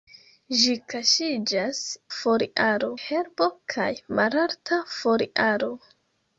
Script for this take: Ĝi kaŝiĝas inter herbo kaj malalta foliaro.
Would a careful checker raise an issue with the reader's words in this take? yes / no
yes